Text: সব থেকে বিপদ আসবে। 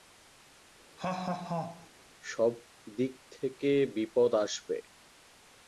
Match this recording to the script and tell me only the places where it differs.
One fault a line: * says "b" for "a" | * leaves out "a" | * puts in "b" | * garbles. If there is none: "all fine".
* puts in "দিক"